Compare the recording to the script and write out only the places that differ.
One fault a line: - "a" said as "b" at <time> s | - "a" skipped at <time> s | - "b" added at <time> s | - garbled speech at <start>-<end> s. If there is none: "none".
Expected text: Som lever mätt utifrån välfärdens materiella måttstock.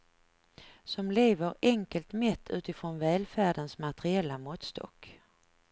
- "enkelt" added at 1.6 s